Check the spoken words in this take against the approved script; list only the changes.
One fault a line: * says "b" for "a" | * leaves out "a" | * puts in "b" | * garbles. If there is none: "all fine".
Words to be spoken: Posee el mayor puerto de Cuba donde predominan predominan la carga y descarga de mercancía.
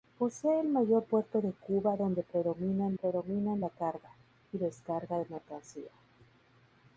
all fine